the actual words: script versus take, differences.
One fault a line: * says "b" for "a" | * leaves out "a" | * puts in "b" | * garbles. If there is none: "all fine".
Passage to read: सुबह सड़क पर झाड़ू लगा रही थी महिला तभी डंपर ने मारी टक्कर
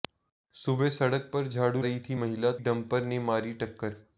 * leaves out "लगा"
* leaves out "तभी"